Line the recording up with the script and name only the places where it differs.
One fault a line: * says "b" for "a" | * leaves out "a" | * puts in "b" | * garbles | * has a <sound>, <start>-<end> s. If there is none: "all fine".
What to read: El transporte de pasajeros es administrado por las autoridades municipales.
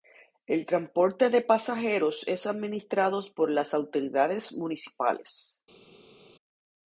all fine